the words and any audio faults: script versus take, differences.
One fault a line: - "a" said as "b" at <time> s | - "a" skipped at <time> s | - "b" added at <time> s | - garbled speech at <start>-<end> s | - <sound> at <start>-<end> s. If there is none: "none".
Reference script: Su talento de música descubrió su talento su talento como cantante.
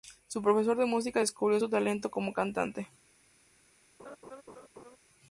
- "talento" said as "profesor" at 0.4 s
- "su talento" skipped at 2.1 s
- laugh at 4.0-5.0 s